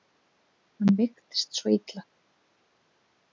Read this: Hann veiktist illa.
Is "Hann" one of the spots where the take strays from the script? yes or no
no